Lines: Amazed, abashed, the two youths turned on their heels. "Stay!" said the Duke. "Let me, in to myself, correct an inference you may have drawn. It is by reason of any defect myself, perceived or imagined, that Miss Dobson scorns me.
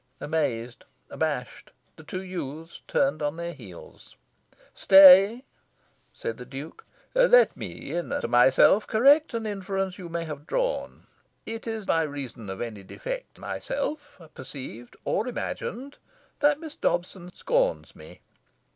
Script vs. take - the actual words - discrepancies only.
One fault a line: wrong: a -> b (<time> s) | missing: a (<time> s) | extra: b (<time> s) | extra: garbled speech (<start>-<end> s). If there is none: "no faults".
no faults